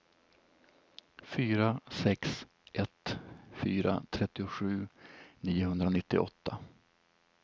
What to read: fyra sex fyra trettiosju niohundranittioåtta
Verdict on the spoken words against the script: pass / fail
fail